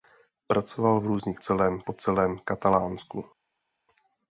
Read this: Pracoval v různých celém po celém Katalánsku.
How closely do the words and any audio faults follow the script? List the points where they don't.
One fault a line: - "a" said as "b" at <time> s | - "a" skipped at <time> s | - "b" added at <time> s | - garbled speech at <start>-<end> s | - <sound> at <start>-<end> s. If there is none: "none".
none